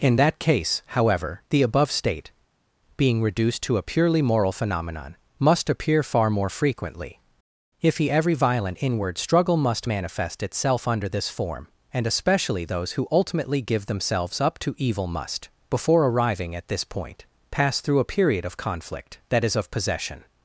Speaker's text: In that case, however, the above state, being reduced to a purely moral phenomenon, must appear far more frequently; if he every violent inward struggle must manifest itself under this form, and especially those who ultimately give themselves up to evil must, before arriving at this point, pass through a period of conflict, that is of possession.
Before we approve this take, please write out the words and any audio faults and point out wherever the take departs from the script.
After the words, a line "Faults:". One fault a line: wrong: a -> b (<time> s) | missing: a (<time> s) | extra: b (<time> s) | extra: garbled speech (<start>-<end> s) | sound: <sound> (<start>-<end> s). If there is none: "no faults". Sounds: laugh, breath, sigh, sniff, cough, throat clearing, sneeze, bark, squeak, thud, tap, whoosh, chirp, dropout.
In that case, however, the above state, being reduced to a purely moral phenomenon, must appear far more frequently; if he every violent inward struggle must manifest itself under this form, and especially those who ultimately give themselves up to evil must, before arriving at this point, pass through a period of conflict, that is of possession.
Faults:
no faults